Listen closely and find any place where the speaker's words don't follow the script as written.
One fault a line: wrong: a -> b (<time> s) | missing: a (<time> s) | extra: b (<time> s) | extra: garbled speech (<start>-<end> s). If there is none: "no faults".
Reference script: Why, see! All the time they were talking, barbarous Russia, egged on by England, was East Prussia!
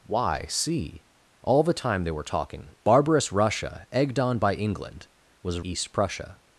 no faults